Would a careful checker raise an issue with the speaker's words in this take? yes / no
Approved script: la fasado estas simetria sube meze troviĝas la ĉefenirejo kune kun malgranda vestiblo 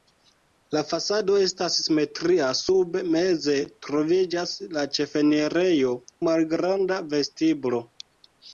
yes